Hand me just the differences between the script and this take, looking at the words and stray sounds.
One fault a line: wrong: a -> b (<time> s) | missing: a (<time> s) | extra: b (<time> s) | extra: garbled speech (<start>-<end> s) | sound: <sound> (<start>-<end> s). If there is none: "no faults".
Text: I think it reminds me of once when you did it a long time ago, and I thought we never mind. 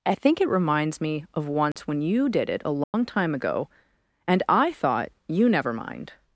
sound: dropout (1.7-1.8 s)
sound: dropout (2.8-2.9 s)
wrong: we -> you (5.3 s)